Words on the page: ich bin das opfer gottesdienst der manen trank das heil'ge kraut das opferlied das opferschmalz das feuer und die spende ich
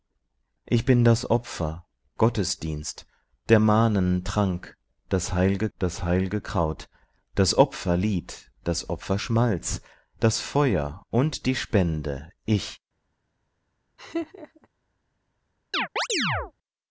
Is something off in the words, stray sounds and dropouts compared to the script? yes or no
yes